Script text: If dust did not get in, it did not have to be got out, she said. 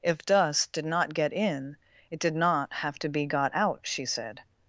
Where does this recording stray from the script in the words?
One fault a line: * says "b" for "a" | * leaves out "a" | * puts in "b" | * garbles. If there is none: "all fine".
all fine